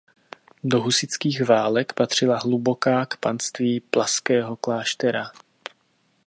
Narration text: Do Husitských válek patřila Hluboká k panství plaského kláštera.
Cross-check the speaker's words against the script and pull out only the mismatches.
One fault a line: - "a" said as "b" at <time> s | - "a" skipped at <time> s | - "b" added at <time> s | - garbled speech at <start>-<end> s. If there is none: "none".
none